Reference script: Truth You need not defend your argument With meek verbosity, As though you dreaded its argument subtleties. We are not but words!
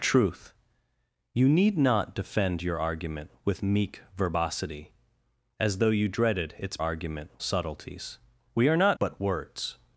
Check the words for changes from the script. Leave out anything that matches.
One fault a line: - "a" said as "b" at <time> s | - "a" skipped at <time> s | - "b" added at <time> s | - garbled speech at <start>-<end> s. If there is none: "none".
none